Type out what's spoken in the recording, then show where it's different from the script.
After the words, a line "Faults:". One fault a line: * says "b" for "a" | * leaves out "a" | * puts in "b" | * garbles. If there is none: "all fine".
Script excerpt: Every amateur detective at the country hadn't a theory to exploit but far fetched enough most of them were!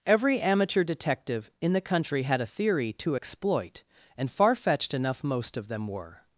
Every amateur detective in the country had a theory to exploit and far fetched enough most of them were!
Faults:
* says "in" for "at"
* says "had" for "hadn't"
* says "and" for "but"